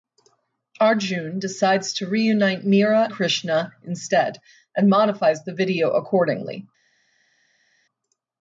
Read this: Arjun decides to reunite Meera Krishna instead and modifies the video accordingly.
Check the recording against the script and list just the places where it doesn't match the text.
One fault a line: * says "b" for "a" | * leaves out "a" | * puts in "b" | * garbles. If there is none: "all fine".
all fine